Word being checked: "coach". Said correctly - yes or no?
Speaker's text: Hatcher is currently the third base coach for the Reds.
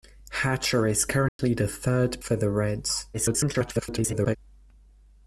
no